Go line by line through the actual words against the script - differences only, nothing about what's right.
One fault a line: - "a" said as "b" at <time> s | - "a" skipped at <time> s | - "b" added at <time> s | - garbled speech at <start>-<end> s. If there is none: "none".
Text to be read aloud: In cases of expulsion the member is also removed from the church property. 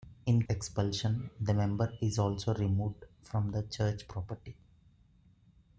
- "cases of" skipped at 0.5 s